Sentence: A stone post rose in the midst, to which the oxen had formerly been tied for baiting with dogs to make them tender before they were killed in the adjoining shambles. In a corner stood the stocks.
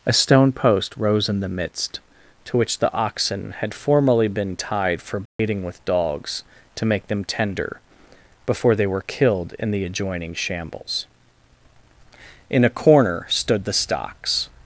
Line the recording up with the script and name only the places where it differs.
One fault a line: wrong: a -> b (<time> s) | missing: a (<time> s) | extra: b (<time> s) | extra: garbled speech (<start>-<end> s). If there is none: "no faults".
no faults